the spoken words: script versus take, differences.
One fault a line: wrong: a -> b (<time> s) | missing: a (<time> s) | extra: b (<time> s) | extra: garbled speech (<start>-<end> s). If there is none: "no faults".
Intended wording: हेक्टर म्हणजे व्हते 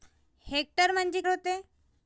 no faults